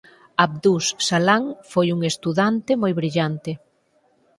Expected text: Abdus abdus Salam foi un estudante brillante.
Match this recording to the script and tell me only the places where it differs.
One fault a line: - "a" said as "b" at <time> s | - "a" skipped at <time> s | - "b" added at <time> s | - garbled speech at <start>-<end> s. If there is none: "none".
- "abdus" skipped at 0.8 s
- "moi" added at 2.8 s